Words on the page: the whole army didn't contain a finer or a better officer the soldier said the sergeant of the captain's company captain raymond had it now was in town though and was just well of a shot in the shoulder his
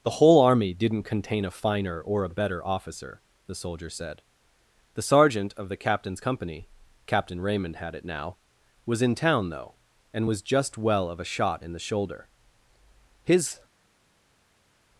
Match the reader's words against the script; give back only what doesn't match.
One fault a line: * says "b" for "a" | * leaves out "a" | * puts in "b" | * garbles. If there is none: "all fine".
all fine